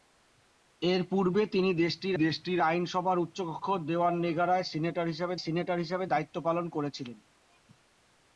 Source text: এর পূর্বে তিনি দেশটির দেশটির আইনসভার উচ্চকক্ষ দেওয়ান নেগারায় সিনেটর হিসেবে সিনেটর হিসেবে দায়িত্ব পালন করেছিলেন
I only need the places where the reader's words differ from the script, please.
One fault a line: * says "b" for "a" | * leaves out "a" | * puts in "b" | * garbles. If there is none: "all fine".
all fine